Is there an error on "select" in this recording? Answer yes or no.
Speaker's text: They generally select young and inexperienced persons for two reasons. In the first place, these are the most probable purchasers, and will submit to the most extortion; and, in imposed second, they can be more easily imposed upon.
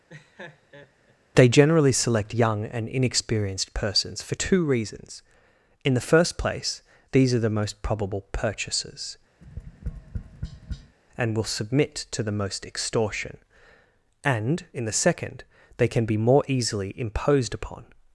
no